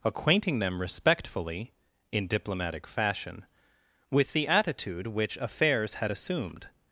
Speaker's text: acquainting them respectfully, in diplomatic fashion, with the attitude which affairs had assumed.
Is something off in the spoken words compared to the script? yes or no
no